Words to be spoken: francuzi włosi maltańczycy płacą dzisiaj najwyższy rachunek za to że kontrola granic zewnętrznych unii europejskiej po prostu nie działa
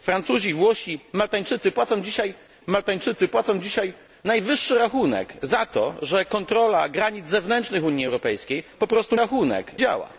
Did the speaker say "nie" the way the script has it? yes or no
no